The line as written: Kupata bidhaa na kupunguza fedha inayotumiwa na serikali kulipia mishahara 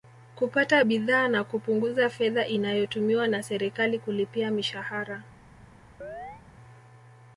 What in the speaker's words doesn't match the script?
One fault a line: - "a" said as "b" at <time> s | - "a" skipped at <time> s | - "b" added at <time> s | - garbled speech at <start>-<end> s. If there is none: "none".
none